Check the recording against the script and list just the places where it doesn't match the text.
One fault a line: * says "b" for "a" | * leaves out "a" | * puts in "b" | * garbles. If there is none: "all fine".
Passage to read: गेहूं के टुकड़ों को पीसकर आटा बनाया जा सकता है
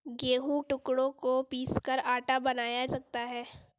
* leaves out "के"
* leaves out "जा"